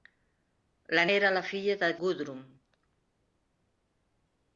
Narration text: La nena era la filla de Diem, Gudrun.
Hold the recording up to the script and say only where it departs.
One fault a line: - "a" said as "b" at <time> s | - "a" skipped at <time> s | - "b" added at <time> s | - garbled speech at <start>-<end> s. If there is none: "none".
- "nena" skipped at 1.0 s
- "Diem" skipped at 1.9 s